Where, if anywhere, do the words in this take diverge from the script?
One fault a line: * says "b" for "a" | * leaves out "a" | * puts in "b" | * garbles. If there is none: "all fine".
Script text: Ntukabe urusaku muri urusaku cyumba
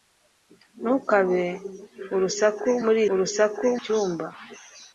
all fine